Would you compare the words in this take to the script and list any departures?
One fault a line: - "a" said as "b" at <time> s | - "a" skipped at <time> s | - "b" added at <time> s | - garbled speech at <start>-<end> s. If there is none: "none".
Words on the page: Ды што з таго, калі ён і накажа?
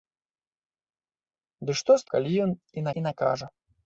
- "таго" skipped at 2.1 s
- "і" added at 3.0 s